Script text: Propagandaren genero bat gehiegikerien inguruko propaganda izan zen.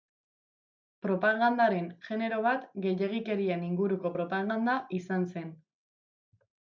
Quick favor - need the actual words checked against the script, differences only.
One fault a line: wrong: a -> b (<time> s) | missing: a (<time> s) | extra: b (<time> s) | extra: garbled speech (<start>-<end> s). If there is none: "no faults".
no faults